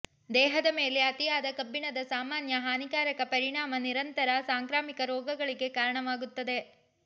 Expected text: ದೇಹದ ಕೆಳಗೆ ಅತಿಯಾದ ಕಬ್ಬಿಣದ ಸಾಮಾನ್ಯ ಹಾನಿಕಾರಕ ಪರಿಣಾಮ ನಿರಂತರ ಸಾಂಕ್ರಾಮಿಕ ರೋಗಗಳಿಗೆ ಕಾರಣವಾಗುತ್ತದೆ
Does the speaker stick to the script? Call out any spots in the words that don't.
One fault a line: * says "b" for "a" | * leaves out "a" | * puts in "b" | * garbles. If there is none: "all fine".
* says "ಮೇಲೆ" for "ಕೆಳಗೆ"